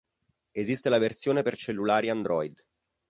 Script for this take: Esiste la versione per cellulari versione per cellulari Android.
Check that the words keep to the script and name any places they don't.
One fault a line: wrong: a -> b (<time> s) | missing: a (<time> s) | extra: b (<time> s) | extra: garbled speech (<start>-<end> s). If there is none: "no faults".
missing: versione per cellulari (2.1 s)